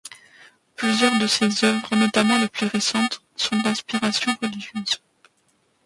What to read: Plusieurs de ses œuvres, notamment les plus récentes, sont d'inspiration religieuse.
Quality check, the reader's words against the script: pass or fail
pass